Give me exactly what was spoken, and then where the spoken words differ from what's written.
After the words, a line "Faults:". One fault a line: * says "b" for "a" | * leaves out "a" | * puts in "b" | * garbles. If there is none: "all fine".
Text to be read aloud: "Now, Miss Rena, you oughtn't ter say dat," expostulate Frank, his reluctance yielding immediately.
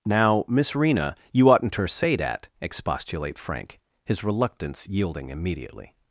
"Now, Miss Rena, you oughtn't ter say dat," expostulate Frank, his reluctance yielding immediately.
Faults:
all fine